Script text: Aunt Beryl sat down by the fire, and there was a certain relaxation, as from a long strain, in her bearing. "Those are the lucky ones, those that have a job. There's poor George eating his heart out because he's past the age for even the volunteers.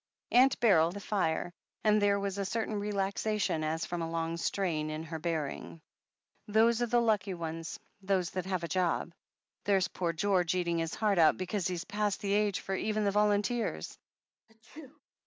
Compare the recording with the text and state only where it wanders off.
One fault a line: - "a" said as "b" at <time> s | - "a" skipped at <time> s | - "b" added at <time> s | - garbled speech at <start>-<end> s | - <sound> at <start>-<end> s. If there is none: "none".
- "sat down by" skipped at 0.9 s
- sneeze at 14.5-15.0 s